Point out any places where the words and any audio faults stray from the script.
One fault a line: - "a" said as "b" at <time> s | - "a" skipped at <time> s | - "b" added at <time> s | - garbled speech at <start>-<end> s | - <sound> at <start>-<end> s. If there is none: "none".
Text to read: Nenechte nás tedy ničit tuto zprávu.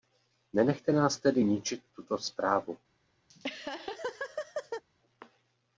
- laugh at 3.3-4.8 s